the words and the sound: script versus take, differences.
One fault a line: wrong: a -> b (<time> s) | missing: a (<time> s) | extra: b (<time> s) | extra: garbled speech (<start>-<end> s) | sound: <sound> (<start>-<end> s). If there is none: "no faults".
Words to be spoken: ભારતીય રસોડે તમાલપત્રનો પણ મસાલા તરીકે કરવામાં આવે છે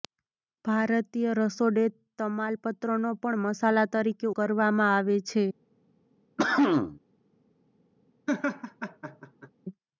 sound: cough (6.4-7.0 s)
sound: laugh (8.3-9.5 s)